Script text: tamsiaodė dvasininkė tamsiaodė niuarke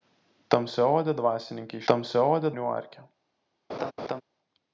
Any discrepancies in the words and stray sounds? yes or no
yes